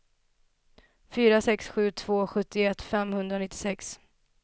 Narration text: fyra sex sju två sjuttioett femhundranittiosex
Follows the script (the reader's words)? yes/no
yes